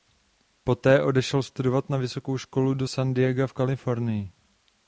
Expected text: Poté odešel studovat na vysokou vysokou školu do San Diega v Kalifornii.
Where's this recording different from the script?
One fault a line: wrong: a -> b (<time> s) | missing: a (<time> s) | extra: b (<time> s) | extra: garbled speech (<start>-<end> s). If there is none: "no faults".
missing: vysokou (2.4 s)